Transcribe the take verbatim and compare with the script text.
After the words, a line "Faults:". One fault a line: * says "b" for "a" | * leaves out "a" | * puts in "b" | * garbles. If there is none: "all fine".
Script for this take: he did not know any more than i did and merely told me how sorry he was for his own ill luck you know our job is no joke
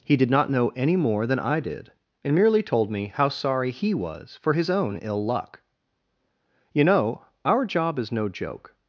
he did not know any more than i did and merely told me how sorry he was for his own ill luck you know our job is no joke
Faults:
all fine